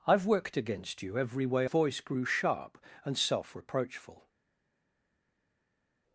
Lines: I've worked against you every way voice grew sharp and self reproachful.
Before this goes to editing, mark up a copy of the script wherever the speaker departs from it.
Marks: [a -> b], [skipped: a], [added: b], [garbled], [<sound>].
I've worked against you every way voice grew sharp and self reproachful.